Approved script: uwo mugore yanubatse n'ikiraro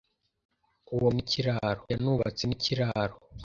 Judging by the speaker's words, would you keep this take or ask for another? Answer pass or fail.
fail